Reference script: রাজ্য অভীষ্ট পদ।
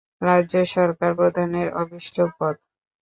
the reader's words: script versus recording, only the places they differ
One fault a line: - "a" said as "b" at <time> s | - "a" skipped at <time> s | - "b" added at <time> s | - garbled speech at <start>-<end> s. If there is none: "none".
- "সরকার প্রধানের" added at 0.8 s